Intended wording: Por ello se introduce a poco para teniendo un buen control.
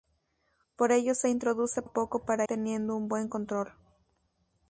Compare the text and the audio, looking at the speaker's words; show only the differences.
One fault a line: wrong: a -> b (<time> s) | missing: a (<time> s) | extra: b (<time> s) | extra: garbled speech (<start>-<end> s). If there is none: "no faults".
no faults